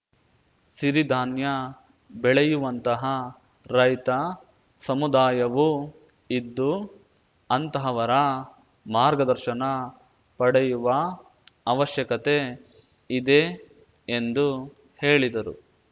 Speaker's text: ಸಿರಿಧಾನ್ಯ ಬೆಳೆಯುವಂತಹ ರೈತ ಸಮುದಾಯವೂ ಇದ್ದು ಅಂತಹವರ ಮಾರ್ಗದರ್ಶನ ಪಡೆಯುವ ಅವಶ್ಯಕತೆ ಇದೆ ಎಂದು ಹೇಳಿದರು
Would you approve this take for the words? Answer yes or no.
yes